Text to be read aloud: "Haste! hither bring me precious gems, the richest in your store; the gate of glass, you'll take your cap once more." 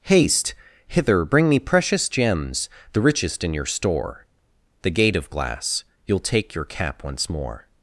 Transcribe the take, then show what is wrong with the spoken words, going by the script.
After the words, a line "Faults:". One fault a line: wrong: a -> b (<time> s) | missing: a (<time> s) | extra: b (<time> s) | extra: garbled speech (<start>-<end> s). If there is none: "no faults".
"Haste! hither bring me precious gems, the richest in your store; the gate of glass, you'll take your cap once more."
Faults:
no faults